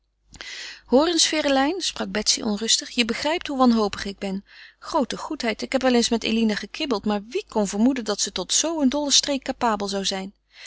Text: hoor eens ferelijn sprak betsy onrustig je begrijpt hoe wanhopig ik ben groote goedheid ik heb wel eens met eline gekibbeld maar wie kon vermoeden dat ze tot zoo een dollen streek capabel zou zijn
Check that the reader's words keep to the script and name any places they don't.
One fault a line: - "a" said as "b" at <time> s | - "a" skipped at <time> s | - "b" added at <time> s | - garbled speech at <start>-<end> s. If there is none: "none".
none